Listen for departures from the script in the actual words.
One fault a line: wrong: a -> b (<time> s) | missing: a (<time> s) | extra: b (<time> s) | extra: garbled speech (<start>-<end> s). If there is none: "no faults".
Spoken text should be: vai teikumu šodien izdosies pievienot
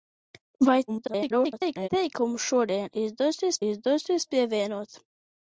extra: garbled speech (0.9-1.9 s)
extra: izdosies (3.7 s)